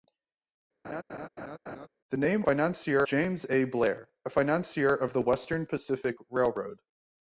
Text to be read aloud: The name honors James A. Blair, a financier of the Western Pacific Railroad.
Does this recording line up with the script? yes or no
no